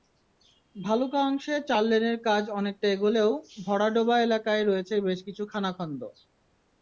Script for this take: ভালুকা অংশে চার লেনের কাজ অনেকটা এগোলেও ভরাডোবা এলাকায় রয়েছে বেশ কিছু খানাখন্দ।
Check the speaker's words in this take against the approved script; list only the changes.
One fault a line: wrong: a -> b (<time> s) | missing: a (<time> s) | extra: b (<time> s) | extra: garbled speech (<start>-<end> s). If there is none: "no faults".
no faults